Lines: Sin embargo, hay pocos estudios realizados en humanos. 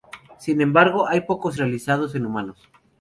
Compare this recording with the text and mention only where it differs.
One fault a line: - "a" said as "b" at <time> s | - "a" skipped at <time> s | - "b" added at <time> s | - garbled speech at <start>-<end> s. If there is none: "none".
- "estudios" skipped at 1.6 s